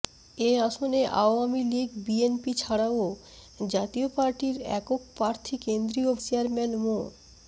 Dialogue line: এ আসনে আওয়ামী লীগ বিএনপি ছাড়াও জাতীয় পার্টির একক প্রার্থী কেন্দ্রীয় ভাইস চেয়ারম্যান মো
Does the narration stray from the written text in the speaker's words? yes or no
yes